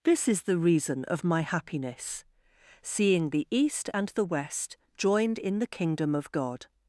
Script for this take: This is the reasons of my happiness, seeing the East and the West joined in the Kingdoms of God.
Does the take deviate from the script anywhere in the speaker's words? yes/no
yes